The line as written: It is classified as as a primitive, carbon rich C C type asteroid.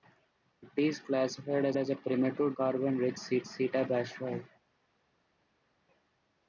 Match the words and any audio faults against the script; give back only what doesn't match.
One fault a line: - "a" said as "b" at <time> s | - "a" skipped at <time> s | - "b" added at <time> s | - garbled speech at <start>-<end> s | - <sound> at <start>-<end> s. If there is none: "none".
none